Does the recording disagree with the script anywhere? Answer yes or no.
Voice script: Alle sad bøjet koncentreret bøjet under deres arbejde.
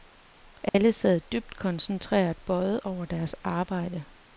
yes